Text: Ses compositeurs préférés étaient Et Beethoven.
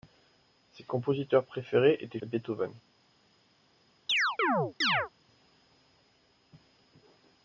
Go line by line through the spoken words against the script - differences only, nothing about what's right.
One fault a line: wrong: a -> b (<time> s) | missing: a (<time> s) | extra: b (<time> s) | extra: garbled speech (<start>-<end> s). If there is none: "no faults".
no faults